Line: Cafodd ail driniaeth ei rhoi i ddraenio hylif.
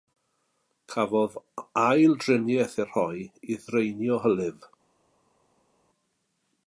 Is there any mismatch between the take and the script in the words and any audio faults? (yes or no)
no